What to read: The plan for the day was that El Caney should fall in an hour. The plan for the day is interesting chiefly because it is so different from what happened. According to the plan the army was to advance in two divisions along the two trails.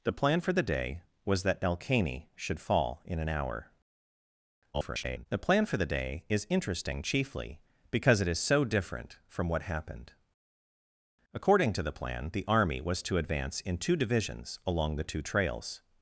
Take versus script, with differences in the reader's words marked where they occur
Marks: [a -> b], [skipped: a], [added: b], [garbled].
The plan for the day was that El Caney should fall in an hour. [garbled] The plan for the day is interesting chiefly because it is so different from what happened. According to the plan the army was to advance in two divisions along the two trails.